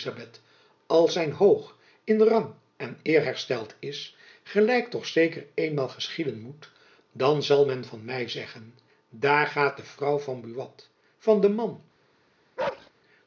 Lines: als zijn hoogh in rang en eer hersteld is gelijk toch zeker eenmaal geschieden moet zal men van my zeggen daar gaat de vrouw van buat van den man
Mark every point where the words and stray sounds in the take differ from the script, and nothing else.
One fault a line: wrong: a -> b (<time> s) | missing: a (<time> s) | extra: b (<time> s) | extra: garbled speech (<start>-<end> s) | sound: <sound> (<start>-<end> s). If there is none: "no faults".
extra: dan (7.1 s)
sound: bark (12.6-12.9 s)